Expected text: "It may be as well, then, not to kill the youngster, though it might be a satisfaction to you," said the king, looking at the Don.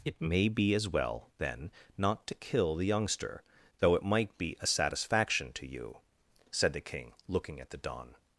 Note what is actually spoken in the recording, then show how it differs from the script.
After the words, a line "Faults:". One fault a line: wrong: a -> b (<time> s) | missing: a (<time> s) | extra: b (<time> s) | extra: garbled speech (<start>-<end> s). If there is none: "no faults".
"It may be as well, then, not to kill the youngster, though it might be a satisfaction to you," said the king, looking at the Don.
Faults:
no faults